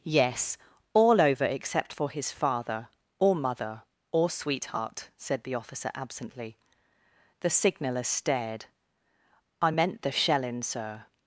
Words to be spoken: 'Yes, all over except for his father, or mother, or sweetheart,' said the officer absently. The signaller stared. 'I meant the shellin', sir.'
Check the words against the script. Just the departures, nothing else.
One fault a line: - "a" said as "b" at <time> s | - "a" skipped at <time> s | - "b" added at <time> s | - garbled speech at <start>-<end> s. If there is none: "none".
none